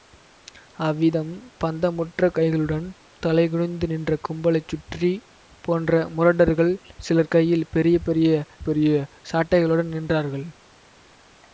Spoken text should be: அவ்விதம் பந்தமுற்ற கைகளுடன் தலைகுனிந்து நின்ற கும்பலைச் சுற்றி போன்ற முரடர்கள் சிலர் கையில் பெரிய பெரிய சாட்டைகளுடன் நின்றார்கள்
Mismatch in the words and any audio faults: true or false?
true